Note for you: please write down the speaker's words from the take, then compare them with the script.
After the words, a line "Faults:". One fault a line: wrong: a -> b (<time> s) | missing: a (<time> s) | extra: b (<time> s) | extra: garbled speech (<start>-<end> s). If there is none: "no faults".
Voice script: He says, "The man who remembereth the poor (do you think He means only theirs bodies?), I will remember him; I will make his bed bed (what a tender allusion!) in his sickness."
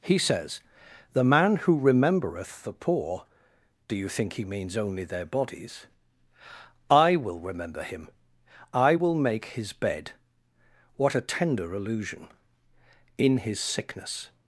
He says, "The man who remembereth the poor (do you think He means only their bodies?), I will remember him; I will make his bed (what a tender allusion!) in his sickness."
Faults:
wrong: theirs -> their (5.0 s)
missing: bed (10.1 s)